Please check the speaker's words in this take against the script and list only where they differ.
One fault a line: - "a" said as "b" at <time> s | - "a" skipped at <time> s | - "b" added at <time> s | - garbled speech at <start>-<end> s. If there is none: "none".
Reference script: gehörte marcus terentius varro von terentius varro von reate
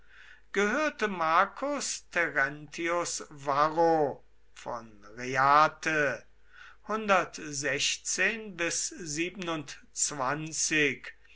- "terentius varro von" skipped at 5.0 s